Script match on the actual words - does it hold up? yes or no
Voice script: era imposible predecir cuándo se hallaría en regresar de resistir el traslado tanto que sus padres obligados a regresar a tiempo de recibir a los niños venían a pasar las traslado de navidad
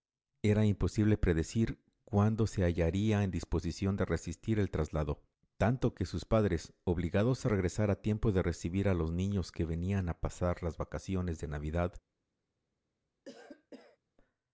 no